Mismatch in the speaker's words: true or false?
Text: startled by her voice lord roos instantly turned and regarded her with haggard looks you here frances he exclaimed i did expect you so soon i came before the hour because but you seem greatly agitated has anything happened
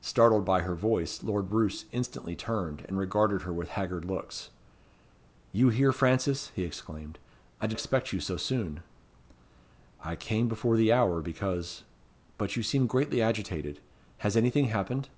false